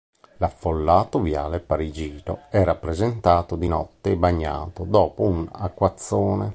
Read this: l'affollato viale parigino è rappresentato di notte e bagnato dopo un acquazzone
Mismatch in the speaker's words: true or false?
false